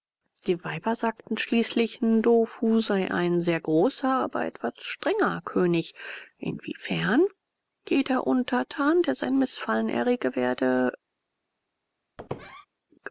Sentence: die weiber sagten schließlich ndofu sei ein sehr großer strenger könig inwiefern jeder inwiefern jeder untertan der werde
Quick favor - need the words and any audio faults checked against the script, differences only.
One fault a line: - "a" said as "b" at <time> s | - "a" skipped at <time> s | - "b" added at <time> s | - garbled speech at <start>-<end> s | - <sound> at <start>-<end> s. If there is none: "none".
- "aber etwas" added at 4.1 s
- "inwiefern jeder untertan der" said as "untertan der sein mißfallen errege" at 8.2 s
- squeak at 12.2-12.7 s